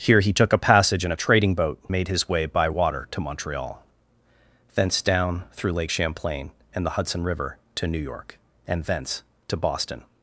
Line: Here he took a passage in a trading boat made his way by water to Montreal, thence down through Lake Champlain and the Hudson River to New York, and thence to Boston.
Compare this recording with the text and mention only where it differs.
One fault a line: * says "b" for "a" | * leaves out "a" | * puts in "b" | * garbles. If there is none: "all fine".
all fine